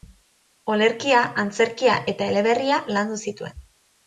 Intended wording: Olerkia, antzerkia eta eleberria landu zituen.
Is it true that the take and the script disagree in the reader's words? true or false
false